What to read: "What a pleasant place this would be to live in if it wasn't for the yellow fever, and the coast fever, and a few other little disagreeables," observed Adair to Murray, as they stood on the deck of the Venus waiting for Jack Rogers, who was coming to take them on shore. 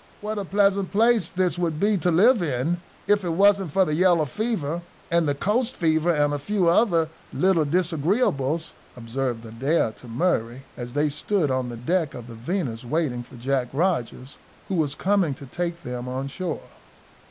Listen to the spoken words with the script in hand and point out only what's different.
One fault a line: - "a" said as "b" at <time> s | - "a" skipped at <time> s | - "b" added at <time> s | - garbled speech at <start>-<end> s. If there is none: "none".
none